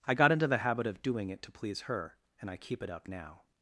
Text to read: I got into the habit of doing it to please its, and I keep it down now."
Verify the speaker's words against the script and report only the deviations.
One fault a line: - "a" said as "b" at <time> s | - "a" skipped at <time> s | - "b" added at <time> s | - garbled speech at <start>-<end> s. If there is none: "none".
- "its" said as "her" at 1.8 s
- "down" said as "up" at 2.9 s